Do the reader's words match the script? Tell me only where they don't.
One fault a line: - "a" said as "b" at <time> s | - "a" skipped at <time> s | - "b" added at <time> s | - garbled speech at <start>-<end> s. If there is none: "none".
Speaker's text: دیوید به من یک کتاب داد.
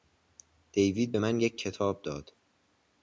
none